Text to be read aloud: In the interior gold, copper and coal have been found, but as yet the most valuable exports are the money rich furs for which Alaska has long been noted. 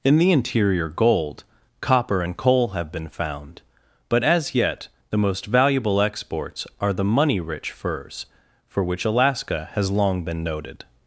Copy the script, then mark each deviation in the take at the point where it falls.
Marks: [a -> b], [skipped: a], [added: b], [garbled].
In the interior gold, copper and coal have been found, but as yet the most valuable exports are the money rich furs for which Alaska has long been noted.